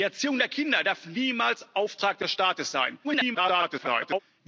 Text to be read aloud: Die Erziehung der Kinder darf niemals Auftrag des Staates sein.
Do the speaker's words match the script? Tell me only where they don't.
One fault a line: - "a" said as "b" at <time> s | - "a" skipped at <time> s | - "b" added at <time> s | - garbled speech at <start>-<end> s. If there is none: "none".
- garbled speech at 3.0-4.2 s